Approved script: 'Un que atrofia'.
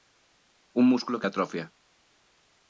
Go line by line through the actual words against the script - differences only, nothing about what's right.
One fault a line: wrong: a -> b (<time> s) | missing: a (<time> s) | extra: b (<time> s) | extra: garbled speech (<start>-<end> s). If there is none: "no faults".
extra: músculo (0.9 s)